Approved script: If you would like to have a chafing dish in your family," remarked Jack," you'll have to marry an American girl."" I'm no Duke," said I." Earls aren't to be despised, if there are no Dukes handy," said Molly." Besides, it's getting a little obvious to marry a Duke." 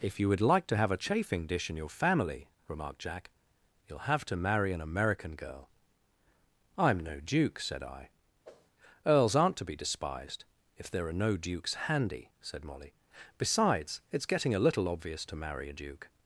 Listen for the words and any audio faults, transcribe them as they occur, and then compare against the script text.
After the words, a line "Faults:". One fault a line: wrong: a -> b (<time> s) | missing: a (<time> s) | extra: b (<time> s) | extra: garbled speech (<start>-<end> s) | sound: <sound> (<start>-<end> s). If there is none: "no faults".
If you would like to have a chafing dish in your family," remarked Jack," you'll have to marry an American girl."" I'm no Duke," said I." Earls aren't to be despised, if there are no Dukes handy," said Molly." Besides, it's getting a little obvious to marry a Duke."
Faults:
sound: whoosh (8.4-8.7 s)